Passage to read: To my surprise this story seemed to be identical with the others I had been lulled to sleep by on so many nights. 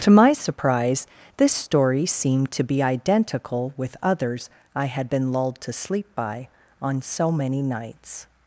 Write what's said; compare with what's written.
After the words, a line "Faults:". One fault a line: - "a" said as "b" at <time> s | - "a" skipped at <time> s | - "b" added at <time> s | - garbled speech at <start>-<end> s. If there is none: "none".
To my surprise this story seemed to be identical with others I had been lulled to sleep by on so many nights.
Faults:
- "the" skipped at 4.0 s